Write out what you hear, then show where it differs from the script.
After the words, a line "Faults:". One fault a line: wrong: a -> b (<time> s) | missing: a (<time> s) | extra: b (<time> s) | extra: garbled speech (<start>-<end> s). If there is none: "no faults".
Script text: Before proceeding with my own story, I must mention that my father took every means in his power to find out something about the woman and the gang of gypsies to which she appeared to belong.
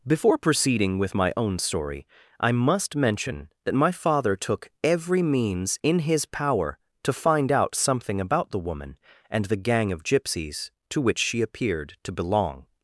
Before proceeding with my own story, I must mention that my father took every means in his power to find out something about the woman and the gang of gypsies to which she appeared to belong.
Faults:
no faults